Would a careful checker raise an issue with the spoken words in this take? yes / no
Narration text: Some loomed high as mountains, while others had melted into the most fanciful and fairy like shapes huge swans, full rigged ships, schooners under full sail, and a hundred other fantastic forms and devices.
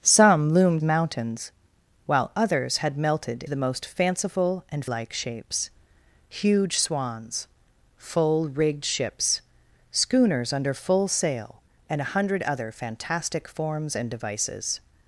yes